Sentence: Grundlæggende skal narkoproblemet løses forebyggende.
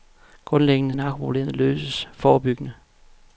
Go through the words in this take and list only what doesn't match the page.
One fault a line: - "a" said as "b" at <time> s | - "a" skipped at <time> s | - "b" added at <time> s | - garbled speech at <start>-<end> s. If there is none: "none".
- "skal" skipped at 0.9 s